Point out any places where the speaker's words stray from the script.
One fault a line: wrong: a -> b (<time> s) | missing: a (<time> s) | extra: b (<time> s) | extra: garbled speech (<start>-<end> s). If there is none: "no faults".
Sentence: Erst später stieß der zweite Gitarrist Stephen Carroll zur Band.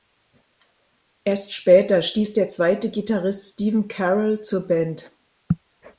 no faults